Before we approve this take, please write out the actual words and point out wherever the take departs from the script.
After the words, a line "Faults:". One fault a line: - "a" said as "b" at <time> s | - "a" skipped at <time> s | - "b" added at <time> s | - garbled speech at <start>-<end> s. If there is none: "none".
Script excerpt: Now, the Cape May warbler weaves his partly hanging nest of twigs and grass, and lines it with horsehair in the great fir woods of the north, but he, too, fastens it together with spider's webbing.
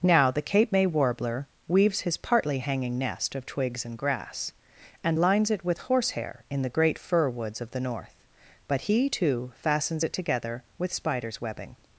Now, the Cape May warbler weaves his partly hanging nest of twigs and grass, and lines it with horsehair in the great fir woods of the north, but he, too, fastens it together with spider's webbing.
Faults:
none